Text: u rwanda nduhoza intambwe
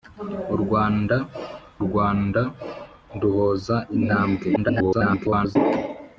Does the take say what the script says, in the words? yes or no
no